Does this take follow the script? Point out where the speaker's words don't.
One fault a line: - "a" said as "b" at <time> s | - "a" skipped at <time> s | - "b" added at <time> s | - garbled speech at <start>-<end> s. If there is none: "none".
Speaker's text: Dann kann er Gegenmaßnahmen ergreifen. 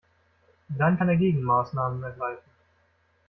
none